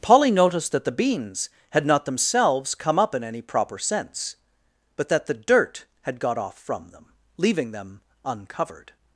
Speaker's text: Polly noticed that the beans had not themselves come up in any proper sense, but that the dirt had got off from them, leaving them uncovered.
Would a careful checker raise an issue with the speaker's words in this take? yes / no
no